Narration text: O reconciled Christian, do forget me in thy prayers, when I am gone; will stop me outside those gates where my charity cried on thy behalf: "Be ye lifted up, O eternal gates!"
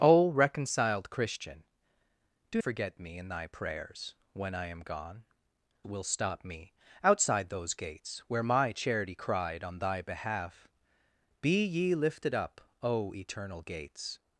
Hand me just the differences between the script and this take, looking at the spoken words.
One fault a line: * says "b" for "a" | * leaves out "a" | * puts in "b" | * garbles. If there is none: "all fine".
all fine